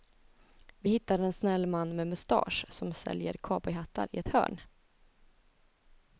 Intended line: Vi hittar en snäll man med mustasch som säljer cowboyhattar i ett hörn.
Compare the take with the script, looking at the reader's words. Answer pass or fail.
pass